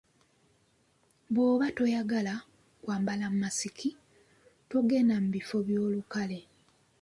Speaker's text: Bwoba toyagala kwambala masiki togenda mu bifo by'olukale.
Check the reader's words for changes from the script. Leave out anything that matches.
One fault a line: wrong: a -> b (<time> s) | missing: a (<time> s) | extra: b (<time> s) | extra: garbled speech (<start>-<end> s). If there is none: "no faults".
no faults